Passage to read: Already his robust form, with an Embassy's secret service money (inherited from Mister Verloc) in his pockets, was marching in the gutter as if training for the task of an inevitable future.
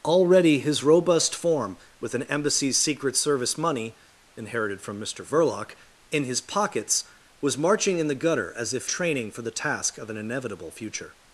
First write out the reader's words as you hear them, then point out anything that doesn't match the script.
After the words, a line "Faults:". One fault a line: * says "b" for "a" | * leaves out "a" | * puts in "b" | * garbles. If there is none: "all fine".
Already his robust form, with an Embassy's secret service money (inherited from Mister Verloc) in his pockets, was marching in the gutter as if training for the task of an inevitable future.
Faults:
all fine